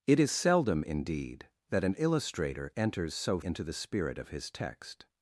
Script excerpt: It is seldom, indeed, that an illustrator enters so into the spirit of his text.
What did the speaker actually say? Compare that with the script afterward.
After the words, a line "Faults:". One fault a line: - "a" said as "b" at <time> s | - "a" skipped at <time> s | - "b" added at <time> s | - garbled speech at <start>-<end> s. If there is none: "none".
It is seldom, indeed, that an illustrator enters so into the spirit of his text.
Faults:
none